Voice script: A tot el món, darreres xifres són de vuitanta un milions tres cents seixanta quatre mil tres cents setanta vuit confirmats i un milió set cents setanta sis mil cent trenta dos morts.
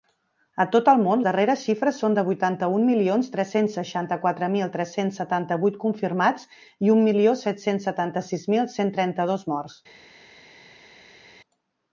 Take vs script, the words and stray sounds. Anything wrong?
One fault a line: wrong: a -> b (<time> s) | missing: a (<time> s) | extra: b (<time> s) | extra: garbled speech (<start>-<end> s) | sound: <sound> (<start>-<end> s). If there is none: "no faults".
no faults